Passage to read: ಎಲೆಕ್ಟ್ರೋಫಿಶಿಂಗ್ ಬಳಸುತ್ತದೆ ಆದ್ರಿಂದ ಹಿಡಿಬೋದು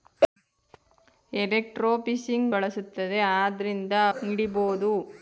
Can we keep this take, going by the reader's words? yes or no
yes